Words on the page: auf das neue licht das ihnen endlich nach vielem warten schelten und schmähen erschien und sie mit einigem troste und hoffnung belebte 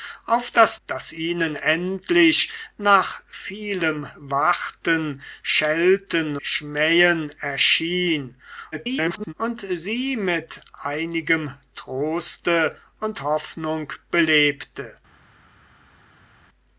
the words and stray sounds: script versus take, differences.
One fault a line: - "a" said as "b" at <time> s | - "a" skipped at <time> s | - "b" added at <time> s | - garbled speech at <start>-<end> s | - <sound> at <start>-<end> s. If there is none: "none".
- "neue licht" skipped at 0.8 s
- "und" skipped at 6.4 s
- garbled speech at 8.7-9.3 s